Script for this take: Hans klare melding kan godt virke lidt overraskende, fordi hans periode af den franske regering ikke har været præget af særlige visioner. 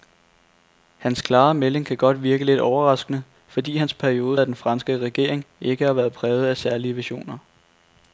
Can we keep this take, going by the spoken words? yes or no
yes